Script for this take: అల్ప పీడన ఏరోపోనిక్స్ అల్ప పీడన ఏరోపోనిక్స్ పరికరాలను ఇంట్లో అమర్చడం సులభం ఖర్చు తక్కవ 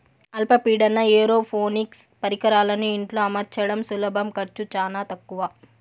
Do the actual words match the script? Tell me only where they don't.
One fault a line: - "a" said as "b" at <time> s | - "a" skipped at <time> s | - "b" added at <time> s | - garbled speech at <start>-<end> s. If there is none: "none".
- "అల్ప పీడన ఏరోపోనిక్స్" skipped at 2.0 s
- "చానా" added at 4.8 s